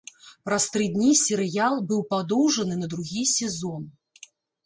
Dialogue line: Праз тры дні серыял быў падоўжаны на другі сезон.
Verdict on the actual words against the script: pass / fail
pass